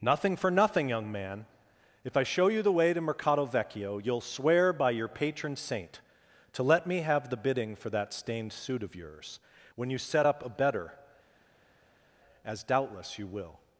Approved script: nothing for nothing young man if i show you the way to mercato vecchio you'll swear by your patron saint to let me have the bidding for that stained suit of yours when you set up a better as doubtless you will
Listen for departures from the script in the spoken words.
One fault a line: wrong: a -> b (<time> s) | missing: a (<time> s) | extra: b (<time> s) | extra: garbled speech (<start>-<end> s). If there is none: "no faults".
no faults